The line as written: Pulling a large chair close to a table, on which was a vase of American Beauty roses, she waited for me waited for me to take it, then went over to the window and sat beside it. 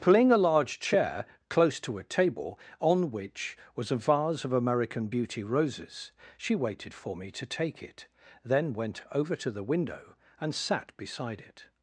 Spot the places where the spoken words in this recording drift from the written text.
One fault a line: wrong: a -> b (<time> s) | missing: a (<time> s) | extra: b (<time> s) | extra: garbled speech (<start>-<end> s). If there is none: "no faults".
missing: waited for me (7.3 s)